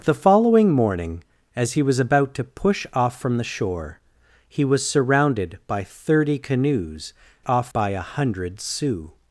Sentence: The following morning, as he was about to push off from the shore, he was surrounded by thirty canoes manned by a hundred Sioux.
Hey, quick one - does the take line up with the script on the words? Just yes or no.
no